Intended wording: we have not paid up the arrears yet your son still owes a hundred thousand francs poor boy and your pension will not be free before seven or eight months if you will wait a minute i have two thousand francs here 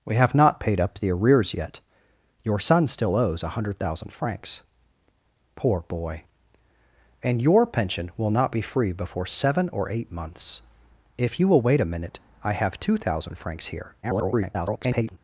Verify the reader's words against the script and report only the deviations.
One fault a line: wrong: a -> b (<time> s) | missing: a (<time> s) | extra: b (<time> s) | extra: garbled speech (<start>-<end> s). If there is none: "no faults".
extra: garbled speech (14.0-15.2 s)